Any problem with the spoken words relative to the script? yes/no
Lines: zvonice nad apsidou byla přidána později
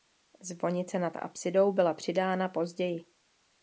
no